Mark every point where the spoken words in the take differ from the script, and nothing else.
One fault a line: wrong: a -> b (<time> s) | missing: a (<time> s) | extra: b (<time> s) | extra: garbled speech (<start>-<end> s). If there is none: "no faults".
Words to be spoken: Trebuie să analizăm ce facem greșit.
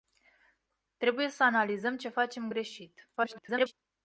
extra: garbled speech (3.2-3.7 s)